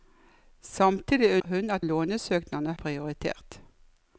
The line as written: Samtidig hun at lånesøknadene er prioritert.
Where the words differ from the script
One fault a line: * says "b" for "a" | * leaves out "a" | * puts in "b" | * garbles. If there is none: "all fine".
all fine